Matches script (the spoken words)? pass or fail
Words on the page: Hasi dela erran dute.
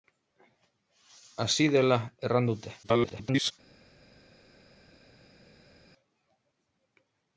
fail